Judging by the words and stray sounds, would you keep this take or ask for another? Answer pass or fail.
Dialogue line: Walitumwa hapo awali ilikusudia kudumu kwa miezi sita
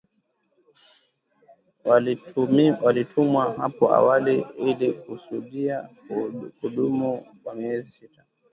pass